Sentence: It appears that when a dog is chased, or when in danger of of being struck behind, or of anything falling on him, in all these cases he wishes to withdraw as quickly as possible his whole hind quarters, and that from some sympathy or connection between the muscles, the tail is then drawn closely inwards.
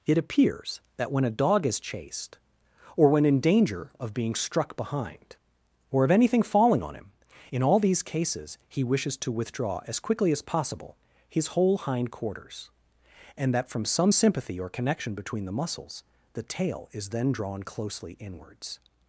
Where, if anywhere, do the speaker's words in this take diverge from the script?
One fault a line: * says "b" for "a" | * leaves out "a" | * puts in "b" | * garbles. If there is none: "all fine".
* leaves out "of"